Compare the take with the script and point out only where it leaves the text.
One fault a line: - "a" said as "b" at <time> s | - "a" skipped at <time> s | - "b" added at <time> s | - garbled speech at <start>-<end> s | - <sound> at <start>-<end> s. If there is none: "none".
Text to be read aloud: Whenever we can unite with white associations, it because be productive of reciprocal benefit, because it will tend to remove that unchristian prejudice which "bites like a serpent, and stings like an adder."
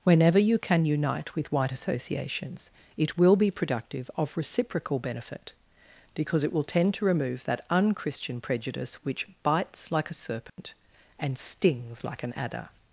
- "we" said as "you" at 0.4 s
- "because" said as "will" at 3.2 s
- dropout at 10.5-10.6 s